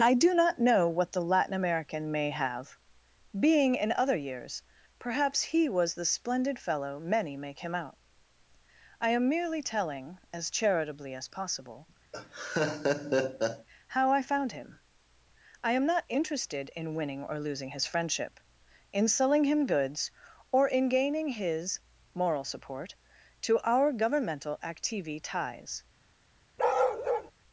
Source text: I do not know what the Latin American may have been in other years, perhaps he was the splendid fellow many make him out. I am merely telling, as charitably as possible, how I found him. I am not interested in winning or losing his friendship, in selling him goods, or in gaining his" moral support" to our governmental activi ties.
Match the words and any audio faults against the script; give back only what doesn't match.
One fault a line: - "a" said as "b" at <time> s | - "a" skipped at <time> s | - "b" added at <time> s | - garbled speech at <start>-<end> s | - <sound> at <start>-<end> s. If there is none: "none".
- "been" said as "being" at 3.4 s
- laugh at 12.1-13.7 s
- bark at 26.6-27.3 s